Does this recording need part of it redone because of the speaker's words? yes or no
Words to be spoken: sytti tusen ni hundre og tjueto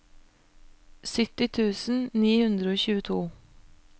no